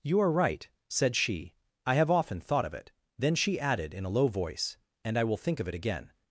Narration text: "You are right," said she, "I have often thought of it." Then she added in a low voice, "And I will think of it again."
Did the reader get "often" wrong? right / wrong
right